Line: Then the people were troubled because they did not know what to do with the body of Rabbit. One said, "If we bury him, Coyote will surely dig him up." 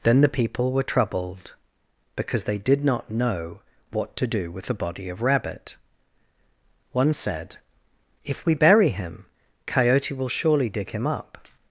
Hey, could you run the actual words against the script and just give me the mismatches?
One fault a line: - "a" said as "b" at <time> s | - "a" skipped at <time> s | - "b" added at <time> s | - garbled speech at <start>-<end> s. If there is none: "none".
none